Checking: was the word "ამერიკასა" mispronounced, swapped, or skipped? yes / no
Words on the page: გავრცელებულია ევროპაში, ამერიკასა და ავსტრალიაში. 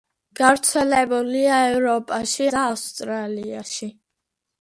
yes